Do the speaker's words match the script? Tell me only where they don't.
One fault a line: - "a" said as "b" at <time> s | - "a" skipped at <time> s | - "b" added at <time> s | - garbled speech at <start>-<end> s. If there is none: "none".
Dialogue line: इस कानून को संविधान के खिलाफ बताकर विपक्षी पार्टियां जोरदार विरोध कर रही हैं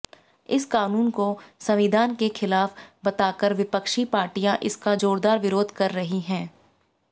- "इसका" added at 4.6 s